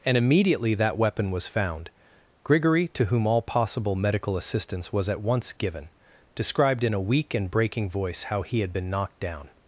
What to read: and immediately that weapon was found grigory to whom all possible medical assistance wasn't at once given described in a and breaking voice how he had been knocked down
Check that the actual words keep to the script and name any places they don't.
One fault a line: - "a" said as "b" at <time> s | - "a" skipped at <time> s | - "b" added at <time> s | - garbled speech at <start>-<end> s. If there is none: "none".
- "wasn't" said as "was" at 4.9 s
- "weak" added at 7.0 s